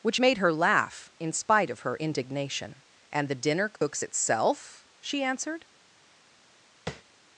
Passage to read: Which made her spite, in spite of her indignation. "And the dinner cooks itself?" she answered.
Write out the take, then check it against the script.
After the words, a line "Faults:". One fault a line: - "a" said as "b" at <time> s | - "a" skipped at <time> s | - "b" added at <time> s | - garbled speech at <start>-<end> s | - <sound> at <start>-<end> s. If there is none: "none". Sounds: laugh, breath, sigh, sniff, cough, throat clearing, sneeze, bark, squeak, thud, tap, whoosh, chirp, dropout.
Which made her laugh, in spite of her indignation. "And the dinner cooks itself?" she answered.
Faults:
- "spite" said as "laugh" at 0.5 s
- dropout at 3.8-3.8 s
- tap at 6.9-7.0 s